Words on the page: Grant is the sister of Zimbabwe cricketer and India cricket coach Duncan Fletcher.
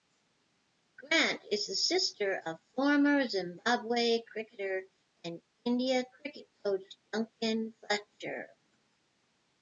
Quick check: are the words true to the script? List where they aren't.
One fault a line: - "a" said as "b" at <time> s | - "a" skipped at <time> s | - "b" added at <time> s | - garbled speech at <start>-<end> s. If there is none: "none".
- "former" added at 2.6 s